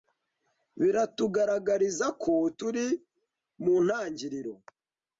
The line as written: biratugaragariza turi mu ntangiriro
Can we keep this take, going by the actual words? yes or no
no